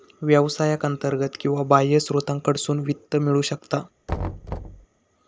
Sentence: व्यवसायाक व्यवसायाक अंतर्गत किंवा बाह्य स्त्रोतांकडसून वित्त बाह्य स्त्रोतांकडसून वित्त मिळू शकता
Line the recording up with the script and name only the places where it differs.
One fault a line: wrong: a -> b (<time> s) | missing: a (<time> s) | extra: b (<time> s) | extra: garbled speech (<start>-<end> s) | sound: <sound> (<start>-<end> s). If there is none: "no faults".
missing: व्यवसायाक (0.8 s)
missing: बाह्य स्त्रोतांकडसून वित्त (3.1 s)
sound: thud (4.1-4.9 s)